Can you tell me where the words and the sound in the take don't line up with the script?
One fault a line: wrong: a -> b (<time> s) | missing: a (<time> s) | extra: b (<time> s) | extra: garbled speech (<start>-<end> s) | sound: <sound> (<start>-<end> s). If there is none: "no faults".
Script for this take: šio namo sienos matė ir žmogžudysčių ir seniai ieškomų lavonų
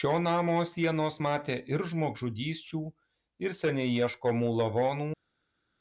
no faults